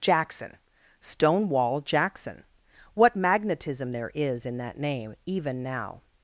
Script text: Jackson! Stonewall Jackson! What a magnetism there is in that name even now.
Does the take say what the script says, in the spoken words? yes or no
no